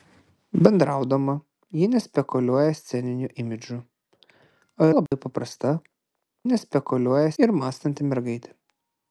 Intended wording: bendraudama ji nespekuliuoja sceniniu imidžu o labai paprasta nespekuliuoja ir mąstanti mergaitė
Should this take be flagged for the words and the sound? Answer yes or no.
yes